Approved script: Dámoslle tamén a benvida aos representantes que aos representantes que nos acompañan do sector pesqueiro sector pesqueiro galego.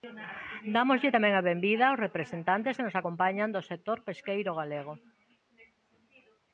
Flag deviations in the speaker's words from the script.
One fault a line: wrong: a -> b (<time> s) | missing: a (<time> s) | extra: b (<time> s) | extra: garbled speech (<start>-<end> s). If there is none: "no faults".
missing: aos representantes que (2.9 s)
missing: sector pesqueiro (4.5 s)